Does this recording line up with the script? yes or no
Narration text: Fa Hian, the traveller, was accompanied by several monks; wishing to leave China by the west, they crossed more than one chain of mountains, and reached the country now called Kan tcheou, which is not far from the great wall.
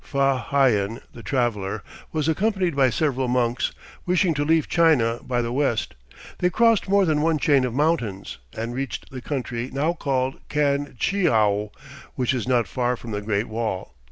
yes